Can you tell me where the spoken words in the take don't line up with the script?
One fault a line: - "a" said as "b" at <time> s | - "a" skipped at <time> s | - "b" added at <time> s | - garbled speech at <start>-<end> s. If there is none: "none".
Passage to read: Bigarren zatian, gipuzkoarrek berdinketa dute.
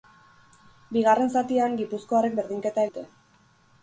none